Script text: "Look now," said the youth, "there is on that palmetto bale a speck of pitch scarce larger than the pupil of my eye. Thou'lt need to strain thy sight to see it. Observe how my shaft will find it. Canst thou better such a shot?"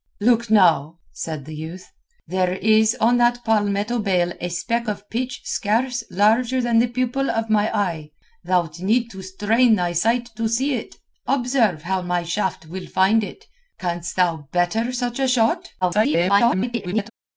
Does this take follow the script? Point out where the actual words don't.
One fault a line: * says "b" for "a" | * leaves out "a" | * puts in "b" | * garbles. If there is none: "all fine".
* garbles